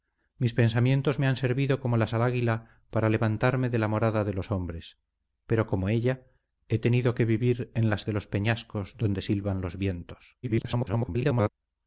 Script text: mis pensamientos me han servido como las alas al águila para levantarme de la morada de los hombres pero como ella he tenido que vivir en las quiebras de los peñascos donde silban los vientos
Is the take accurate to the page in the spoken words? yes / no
no